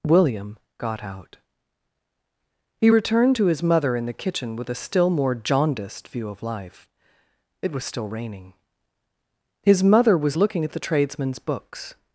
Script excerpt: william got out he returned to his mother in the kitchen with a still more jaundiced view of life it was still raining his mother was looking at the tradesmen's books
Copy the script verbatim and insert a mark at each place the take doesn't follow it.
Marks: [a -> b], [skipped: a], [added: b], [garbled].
william got out he returned to his mother in the kitchen with a still more jaundiced view of life it was still raining his mother was looking at the tradesmen's books